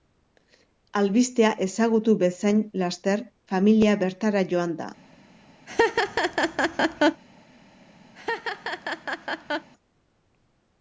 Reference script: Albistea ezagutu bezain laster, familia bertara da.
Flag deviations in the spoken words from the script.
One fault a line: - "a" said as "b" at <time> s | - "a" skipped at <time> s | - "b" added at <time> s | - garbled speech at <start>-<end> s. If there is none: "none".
- "joan" added at 4.5 s